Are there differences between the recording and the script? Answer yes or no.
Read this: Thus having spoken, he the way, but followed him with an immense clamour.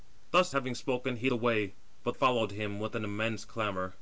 no